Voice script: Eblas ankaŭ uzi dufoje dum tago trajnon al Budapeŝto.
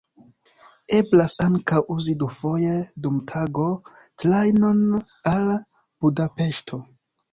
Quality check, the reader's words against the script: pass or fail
pass